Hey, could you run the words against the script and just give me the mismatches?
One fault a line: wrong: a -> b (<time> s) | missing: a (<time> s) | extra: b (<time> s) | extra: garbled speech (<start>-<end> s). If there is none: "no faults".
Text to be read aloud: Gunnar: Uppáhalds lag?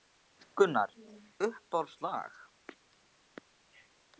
no faults